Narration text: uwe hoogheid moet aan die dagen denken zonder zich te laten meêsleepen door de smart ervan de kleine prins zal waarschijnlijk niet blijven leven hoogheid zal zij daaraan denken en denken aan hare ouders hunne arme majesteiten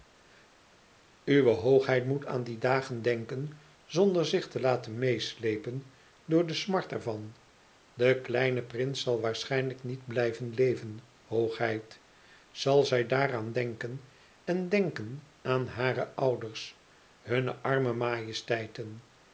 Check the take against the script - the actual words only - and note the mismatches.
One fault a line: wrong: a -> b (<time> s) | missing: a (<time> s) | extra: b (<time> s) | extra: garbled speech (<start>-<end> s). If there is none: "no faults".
no faults